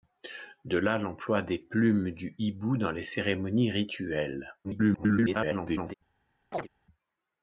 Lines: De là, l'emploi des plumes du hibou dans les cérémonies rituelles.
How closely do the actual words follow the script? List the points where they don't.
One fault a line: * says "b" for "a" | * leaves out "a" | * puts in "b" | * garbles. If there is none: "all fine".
* garbles